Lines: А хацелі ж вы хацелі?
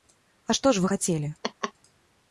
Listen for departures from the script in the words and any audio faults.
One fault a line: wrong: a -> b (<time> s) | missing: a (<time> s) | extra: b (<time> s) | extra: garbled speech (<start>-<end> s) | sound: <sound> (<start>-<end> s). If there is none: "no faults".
wrong: хацелі -> што (0.6 s)
sound: laugh (1.4-1.7 s)